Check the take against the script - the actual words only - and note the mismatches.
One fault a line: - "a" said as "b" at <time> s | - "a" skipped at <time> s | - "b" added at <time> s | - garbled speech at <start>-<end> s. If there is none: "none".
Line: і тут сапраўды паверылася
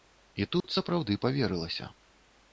none